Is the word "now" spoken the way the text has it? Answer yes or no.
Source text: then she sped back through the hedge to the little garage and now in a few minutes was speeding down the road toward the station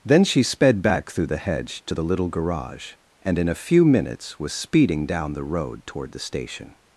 no